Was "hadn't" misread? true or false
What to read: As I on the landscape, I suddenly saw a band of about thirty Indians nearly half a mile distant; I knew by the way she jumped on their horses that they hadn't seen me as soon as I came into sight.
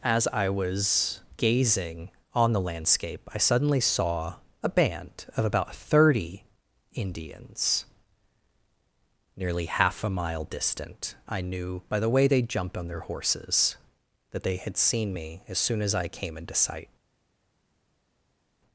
true